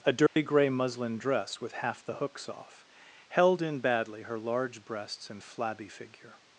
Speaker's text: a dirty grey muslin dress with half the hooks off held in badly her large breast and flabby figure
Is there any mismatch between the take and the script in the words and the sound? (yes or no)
yes